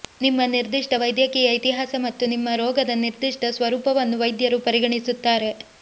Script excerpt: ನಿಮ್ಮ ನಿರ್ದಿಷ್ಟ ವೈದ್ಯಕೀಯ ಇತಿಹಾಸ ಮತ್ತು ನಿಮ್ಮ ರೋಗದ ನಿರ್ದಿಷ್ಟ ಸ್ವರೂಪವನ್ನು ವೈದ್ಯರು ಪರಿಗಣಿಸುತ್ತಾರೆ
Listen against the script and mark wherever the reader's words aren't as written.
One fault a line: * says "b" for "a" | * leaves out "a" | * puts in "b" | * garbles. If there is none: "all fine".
all fine